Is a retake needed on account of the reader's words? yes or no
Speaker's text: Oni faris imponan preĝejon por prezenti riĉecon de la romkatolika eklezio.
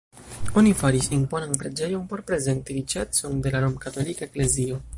no